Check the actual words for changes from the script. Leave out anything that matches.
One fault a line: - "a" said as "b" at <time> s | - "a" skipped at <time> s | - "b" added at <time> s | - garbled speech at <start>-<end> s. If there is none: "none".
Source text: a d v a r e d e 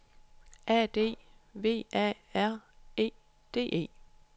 none